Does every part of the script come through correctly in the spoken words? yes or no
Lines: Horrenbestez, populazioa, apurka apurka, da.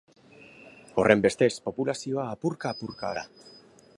yes